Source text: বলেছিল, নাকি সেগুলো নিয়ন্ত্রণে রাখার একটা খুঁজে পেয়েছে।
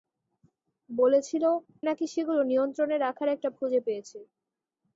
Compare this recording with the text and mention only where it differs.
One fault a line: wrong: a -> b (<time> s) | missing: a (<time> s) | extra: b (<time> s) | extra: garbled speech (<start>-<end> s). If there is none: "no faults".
no faults